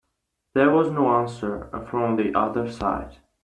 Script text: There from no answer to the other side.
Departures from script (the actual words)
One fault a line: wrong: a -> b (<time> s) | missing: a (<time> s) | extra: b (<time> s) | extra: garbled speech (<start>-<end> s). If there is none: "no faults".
wrong: from -> was (0.7 s)
wrong: to -> from (1.9 s)